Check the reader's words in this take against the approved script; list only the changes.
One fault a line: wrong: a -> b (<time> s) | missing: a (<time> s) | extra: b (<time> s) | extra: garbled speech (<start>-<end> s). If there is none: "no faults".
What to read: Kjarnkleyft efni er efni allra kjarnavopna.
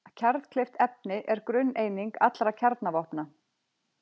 wrong: efni -> grunneining (1.5 s)